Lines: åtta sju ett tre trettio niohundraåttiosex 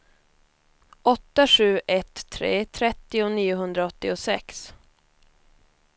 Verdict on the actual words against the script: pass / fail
pass